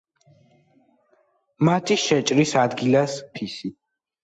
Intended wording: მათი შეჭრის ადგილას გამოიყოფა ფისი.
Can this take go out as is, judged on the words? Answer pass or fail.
fail